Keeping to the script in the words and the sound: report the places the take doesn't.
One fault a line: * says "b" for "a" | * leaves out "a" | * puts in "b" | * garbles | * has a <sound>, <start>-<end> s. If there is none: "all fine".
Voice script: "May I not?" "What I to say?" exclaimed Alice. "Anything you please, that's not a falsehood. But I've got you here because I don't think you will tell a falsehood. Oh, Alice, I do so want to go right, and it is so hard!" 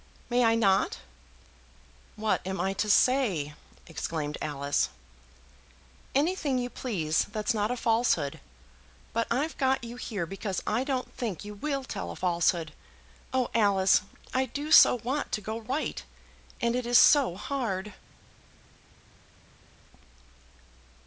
* puts in "am"